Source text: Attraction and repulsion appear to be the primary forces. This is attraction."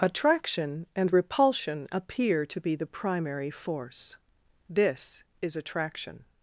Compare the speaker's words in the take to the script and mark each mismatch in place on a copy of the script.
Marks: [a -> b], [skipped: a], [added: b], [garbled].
Attraction and repulsion appear to be the primary [forces. -> force] This is attraction."